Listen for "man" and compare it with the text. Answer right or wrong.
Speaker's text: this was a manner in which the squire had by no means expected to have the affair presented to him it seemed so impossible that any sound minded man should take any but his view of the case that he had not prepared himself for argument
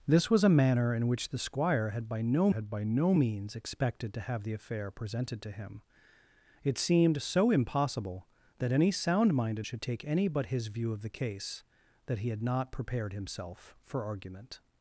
wrong